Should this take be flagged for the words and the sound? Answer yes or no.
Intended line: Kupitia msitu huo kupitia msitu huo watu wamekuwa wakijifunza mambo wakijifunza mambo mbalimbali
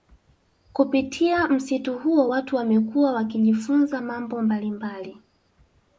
yes